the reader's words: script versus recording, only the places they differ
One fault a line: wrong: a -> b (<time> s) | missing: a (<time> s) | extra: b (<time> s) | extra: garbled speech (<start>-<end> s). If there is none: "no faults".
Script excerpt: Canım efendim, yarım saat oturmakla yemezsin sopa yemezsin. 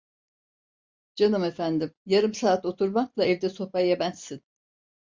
wrong: yemezsin -> evde (3.2 s)